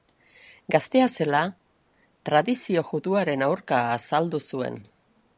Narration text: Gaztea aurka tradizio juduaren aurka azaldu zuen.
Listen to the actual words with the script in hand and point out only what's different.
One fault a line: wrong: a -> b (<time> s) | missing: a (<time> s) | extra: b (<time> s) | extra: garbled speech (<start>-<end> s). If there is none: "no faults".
wrong: aurka -> zela (1.2 s)